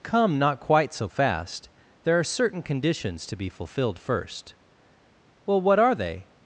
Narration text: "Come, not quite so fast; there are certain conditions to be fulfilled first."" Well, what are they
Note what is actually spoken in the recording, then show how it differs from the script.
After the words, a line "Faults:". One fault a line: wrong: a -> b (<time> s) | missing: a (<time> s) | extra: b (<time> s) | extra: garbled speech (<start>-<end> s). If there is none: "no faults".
"Come, not quite so fast; there are certain conditions to be fulfilled first."" Well, what are they
Faults:
no faults